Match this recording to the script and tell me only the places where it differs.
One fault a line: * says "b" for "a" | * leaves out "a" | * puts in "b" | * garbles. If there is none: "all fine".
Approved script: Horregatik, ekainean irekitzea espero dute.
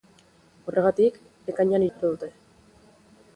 * leaves out "irekitzea"